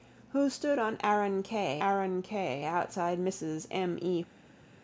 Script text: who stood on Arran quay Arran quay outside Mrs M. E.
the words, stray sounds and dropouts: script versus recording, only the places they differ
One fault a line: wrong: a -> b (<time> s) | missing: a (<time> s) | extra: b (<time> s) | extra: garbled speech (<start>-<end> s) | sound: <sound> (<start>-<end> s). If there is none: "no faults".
no faults